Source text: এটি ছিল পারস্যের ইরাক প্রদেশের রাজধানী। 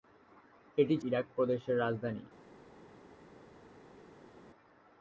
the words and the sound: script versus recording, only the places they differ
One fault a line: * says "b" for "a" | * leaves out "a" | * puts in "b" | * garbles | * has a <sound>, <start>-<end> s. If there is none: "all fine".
* leaves out "ছিল পারস্যের"